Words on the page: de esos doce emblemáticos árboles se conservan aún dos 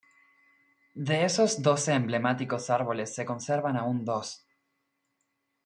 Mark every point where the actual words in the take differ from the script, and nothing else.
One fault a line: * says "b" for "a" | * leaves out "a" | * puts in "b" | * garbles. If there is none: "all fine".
all fine